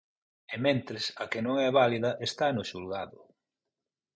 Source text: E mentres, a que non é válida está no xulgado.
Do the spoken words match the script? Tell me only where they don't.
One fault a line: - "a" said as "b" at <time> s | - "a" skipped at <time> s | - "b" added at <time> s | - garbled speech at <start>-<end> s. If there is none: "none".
none